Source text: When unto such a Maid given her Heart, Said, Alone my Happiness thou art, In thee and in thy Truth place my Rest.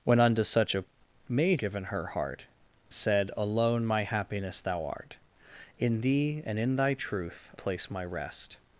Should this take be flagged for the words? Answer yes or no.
no